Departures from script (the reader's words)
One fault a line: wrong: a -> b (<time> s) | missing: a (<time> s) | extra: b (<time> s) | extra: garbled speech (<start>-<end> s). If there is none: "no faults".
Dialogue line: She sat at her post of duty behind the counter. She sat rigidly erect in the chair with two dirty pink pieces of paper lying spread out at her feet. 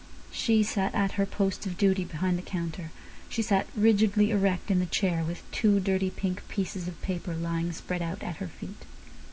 no faults